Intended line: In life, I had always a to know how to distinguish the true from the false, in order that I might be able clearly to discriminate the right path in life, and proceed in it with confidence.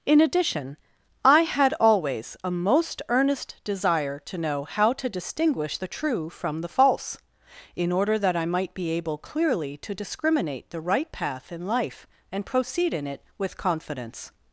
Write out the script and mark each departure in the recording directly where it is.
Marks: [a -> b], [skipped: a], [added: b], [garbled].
In [life, -> addition] I had always a [added: most earnest desire] to know how to distinguish the true from the false, in order that I might be able clearly to discriminate the right path in life, and proceed in it with confidence.